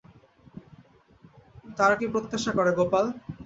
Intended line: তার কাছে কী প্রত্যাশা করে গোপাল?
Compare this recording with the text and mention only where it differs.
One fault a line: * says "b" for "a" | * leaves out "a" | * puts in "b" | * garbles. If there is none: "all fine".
* leaves out "কাছে"